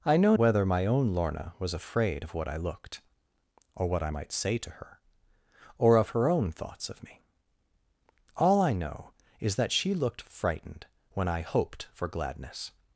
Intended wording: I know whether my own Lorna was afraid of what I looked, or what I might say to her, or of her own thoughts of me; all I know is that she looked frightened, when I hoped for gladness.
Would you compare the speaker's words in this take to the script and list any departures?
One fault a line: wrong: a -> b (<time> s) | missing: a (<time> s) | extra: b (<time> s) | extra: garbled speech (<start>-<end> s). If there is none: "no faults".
no faults